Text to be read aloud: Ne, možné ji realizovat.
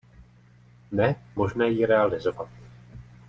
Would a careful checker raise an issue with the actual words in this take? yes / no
no